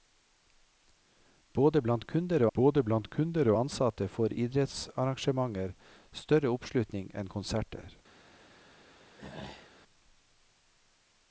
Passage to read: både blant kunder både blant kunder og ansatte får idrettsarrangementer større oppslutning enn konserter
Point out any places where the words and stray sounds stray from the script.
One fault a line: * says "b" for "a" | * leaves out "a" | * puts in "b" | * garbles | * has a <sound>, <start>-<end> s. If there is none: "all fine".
* has a throat clearing, 9.2-9.8 s